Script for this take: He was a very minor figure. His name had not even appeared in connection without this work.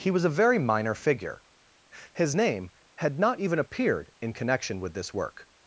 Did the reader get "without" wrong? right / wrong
wrong